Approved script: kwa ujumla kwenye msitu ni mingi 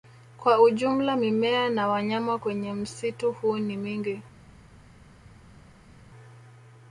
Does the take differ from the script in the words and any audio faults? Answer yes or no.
yes